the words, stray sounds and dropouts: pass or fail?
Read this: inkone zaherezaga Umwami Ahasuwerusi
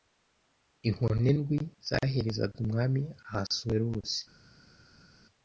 fail